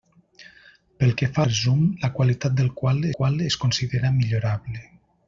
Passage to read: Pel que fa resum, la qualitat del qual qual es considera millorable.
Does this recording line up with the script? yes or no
yes